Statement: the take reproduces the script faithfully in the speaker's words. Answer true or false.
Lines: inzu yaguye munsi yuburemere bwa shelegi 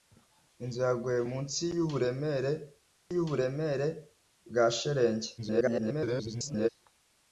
false